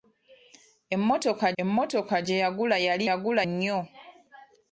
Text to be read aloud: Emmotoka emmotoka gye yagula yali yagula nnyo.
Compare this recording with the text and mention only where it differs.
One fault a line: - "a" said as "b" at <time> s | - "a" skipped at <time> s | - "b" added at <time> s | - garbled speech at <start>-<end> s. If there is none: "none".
none